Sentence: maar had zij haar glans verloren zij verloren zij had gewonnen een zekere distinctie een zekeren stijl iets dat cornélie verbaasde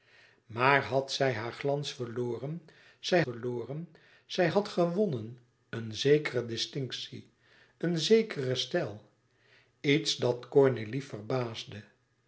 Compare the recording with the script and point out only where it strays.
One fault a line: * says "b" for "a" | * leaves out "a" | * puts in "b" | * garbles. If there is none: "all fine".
all fine